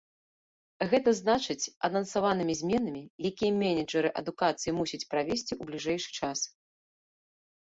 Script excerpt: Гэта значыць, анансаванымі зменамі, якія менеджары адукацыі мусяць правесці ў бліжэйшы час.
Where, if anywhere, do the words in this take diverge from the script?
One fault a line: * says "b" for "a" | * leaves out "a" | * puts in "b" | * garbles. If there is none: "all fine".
all fine